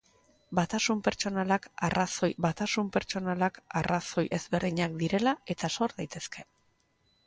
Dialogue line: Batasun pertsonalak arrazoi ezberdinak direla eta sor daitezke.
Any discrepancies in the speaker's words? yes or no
yes